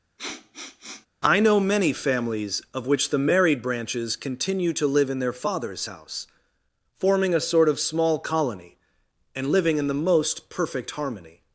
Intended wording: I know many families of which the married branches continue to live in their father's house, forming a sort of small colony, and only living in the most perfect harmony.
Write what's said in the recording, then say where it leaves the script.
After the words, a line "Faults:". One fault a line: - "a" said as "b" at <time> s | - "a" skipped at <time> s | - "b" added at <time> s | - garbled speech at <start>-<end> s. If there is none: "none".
I know many families of which the married branches continue to live in their father's house, forming a sort of small colony, and living in the most perfect harmony.
Faults:
- "only" skipped at 9.5 s